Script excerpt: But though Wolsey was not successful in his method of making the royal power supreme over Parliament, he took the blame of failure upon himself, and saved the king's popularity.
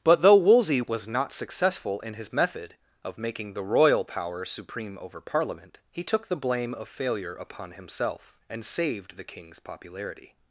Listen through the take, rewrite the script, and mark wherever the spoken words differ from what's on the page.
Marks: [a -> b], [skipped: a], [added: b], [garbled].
But though Wolsey was not successful in his method of making the royal power supreme over Parliament, he took the blame of failure upon himself, and saved the king's popularity.